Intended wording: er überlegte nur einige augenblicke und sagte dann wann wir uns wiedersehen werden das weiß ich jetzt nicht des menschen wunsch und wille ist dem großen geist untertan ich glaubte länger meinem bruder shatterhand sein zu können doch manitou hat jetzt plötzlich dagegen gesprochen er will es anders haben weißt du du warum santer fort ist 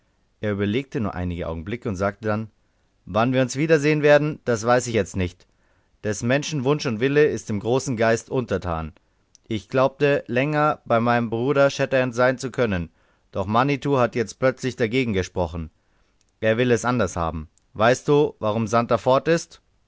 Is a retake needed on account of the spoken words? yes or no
yes